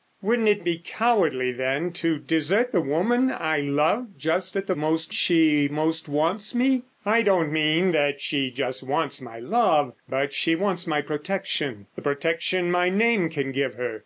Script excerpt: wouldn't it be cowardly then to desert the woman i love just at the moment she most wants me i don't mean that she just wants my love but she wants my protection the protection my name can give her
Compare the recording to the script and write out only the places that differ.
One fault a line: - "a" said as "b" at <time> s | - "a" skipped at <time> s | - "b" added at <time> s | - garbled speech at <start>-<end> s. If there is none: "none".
- "moment" said as "most" at 4.7 s